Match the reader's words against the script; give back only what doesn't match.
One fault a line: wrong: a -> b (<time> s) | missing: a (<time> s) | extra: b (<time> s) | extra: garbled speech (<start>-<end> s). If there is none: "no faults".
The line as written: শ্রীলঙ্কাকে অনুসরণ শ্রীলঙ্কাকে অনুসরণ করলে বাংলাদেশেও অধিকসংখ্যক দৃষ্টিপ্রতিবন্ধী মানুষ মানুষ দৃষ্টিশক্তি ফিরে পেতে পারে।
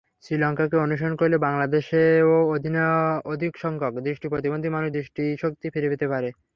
missing: শ্রীলঙ্কাকে অনুসরণ (1.1 s)
missing: মানুষ (4.9 s)